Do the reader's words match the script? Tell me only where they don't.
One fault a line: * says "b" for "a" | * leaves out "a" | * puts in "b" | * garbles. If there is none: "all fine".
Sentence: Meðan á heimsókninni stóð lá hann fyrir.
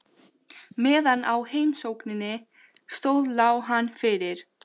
all fine